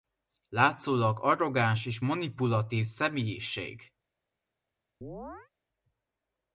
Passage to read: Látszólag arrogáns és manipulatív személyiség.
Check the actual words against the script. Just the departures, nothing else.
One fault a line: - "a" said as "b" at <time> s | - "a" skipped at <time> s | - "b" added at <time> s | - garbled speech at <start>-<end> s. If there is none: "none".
none